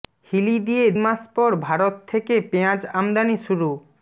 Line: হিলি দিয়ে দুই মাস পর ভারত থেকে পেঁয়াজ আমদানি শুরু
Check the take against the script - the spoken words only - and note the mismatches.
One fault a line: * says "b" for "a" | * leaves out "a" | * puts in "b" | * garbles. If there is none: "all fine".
* leaves out "দুই"